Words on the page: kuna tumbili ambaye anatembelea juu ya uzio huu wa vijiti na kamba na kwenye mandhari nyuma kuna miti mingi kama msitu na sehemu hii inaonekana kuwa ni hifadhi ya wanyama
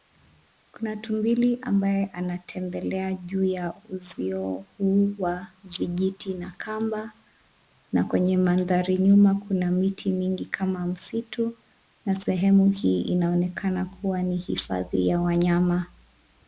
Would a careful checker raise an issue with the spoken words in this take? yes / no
no